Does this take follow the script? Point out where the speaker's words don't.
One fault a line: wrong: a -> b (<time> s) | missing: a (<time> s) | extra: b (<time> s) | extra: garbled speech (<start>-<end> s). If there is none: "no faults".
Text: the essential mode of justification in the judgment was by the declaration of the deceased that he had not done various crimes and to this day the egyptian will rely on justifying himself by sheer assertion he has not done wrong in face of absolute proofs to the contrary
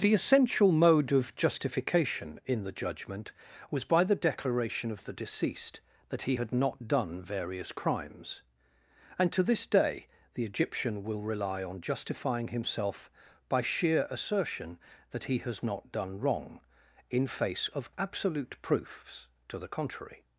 extra: that (15.1 s)